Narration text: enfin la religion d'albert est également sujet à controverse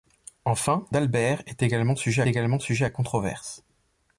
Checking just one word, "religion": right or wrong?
wrong